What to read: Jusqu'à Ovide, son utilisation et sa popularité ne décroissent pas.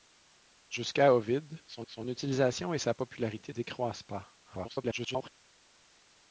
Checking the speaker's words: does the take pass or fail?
fail